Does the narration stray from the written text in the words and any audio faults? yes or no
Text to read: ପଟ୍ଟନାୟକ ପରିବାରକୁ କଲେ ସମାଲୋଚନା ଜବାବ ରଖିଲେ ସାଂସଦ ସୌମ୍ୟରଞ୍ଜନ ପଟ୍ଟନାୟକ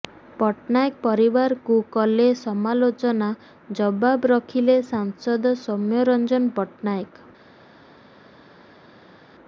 no